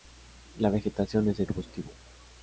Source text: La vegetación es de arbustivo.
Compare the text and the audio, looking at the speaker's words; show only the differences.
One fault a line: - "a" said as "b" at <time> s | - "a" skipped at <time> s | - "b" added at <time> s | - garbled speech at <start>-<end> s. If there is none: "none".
none